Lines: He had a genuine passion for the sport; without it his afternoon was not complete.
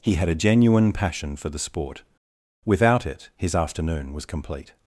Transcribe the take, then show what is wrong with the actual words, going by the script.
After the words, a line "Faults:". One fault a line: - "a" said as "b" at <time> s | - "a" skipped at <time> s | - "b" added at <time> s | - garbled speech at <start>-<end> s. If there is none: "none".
He had a genuine passion for the sport; without it his afternoon was complete.
Faults:
- "not" skipped at 4.2 s